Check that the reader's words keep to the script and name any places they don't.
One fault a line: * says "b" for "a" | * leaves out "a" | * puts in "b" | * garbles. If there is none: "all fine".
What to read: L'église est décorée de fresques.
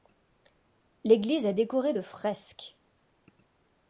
all fine